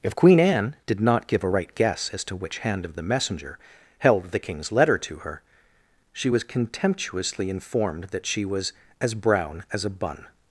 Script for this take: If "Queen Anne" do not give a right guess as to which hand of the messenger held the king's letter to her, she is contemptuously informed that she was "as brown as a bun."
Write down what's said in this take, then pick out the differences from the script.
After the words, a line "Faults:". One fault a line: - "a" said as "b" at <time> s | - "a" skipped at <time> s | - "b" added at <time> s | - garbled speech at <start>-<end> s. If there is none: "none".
If "Queen Anne" did not give a right guess as to which hand of the messenger held the king's letter to her, she was contemptuously informed that she was "as brown as a bun."
Faults:
- "do" said as "did" at 0.9 s
- "is" said as "was" at 6.3 s